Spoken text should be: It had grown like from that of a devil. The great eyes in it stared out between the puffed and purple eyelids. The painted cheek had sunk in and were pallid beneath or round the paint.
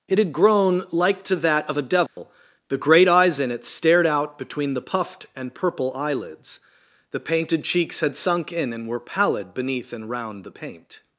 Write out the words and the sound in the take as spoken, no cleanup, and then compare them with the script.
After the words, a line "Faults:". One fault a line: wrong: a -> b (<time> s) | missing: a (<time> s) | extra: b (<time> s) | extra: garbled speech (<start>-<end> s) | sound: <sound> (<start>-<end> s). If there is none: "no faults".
It had grown like to that of a devil. The great eyes in it stared out between the puffed and purple eyelids. The painted cheeks had sunk in and were pallid beneath and round the paint.
Faults:
wrong: from -> to (1.2 s)
sound: dropout (2.1-2.2 s)
wrong: cheek -> cheeks (7.6 s)
wrong: or -> and (9.9 s)